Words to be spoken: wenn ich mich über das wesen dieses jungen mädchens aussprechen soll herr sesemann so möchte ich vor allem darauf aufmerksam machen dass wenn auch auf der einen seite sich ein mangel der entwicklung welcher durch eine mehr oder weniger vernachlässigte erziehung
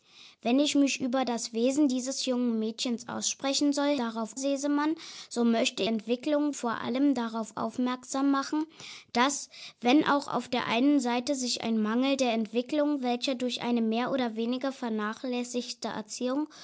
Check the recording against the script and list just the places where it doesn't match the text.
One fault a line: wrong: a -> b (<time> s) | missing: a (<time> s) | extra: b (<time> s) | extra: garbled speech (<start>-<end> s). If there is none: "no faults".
wrong: herr -> darauf (4.0 s)
wrong: ich -> entwicklung (5.9 s)